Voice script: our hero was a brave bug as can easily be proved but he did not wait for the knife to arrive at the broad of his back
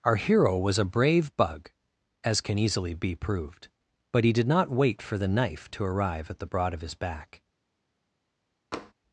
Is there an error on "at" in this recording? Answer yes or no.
no